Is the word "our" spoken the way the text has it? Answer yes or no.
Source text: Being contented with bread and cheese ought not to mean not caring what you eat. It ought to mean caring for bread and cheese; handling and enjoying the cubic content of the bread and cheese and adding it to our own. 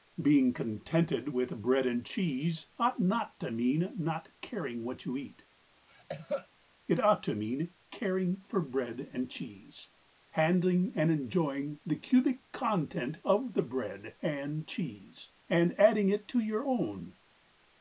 no